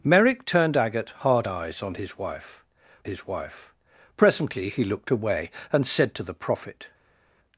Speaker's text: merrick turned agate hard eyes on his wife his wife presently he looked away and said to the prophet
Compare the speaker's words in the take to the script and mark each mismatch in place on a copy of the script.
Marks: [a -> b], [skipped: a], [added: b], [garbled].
merrick turned agate hard eyes on his wife his wife presently he looked away and said to the prophet